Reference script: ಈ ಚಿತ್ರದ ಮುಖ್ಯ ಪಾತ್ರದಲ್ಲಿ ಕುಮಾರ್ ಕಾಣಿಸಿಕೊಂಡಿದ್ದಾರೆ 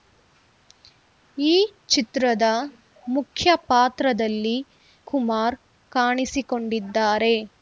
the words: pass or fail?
pass